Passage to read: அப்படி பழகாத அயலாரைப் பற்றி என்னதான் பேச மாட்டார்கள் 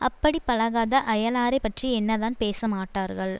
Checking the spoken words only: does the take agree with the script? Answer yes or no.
yes